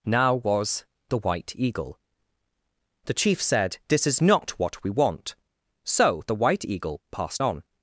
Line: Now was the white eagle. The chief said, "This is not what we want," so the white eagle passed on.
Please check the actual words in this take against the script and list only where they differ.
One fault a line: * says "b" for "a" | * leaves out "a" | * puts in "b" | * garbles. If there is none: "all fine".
all fine